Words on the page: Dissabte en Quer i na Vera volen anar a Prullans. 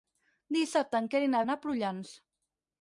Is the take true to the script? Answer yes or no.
no